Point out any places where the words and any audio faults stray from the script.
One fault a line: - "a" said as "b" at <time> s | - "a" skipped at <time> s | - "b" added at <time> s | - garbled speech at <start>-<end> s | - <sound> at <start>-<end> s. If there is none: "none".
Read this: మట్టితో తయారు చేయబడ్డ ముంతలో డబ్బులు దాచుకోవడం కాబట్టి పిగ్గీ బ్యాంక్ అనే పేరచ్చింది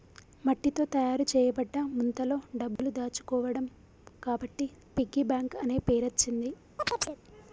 - dropout at 2.8-2.8 s
- chirp at 6.8-7.2 s